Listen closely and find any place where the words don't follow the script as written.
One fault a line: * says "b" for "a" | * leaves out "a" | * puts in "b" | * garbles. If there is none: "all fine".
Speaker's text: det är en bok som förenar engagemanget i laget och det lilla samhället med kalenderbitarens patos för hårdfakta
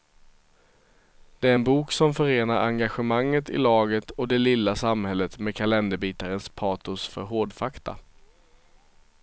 all fine